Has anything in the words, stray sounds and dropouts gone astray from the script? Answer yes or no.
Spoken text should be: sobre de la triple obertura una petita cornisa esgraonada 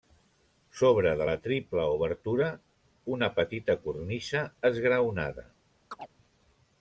yes